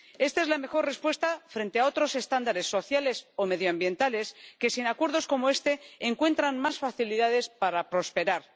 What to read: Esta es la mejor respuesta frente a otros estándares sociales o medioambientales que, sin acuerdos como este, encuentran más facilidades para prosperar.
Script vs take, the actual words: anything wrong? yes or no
no